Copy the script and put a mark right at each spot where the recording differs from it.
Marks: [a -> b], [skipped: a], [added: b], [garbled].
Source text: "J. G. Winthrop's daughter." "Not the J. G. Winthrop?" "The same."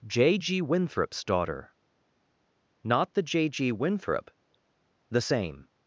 "J. G. Winthrop's daughter." "Not the J. G. Winthrop?" "The same."